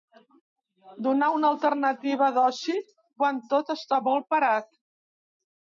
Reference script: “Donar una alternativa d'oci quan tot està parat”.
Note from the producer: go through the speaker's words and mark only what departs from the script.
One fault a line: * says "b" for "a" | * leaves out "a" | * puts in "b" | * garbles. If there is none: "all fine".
* puts in "molt"